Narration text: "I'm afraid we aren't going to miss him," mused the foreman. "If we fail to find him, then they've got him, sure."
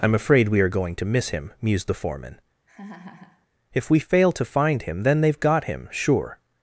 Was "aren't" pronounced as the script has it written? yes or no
no